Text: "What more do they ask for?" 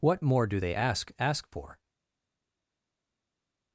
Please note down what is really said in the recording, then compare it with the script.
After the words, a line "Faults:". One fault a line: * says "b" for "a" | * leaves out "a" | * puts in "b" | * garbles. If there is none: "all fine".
"What more do they ask ask for?"
Faults:
* puts in "ask"